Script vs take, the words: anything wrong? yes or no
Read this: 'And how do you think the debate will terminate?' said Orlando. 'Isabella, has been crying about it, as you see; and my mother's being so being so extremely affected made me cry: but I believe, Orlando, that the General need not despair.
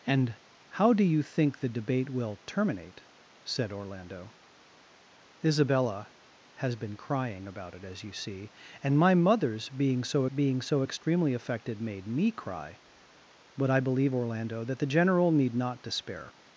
no